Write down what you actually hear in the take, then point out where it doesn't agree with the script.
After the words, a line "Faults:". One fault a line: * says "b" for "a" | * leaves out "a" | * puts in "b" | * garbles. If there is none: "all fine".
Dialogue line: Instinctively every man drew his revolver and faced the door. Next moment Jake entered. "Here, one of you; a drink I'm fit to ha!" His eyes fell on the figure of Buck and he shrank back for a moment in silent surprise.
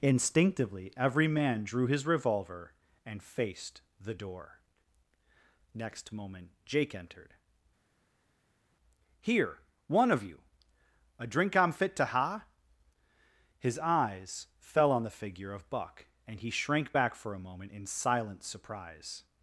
Instinctively every man drew his revolver and faced the door. Next moment Jake entered. "Here, one of you; a drink I'm fit to ha!" His eyes fell on the figure of Buck and he shrank back for a moment in silent surprise.
Faults:
all fine